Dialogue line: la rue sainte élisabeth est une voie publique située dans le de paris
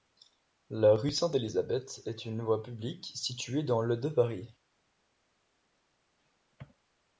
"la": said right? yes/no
yes